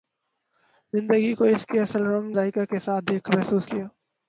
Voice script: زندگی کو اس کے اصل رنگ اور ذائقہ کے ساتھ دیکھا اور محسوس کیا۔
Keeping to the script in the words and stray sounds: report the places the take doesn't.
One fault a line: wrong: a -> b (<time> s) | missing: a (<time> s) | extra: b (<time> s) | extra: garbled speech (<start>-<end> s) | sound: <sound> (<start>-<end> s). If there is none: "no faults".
missing: اور (2.4 s)
missing: اور (3.3 s)